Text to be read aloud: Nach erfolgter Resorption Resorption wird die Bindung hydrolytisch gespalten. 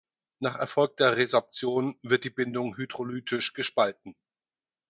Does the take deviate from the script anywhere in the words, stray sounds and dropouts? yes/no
yes